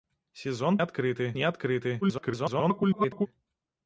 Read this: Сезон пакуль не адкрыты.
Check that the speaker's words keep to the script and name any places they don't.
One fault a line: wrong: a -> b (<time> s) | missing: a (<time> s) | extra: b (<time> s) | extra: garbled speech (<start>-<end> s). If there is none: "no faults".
wrong: пакуль -> адкрыты (0.8 s)
extra: garbled speech (2.0-3.3 s)